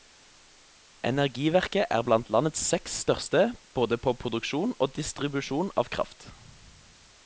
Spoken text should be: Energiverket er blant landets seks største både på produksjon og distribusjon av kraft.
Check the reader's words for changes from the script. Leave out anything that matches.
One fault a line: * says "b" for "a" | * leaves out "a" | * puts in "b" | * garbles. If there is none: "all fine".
all fine